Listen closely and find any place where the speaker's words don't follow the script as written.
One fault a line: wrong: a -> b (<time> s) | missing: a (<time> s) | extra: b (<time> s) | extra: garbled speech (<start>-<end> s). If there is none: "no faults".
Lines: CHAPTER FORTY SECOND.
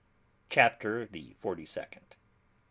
extra: THE (1.0 s)